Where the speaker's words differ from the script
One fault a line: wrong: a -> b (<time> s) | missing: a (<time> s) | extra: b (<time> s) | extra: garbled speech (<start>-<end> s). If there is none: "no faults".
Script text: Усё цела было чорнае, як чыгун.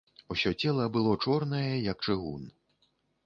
no faults